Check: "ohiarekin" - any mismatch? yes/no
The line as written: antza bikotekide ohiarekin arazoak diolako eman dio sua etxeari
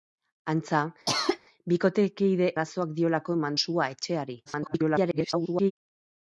yes